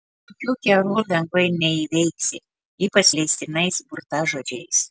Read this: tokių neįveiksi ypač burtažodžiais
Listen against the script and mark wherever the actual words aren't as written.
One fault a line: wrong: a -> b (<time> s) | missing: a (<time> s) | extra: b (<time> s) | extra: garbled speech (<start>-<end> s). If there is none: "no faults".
extra: kerų lengvai (0.7 s)
extra: leistinais (3.2 s)